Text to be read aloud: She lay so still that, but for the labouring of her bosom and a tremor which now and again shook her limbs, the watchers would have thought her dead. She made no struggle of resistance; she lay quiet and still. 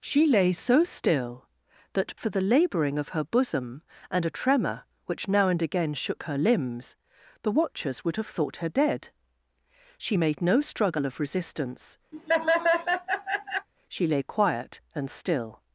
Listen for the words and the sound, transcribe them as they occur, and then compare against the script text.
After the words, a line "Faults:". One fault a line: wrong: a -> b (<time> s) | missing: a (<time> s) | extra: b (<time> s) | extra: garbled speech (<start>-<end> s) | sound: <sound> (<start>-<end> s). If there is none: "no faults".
She lay so still that, for the labouring of her bosom and a tremor which now and again shook her limbs, the watchers would have thought her dead. She made no struggle of resistance; she lay quiet and still.
Faults:
missing: but (2.1 s)
sound: laugh (12.1-13.7 s)